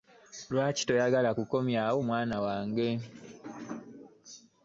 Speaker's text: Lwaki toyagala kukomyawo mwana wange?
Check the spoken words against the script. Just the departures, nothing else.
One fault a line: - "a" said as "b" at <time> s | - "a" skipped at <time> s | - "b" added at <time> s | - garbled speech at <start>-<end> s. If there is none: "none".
none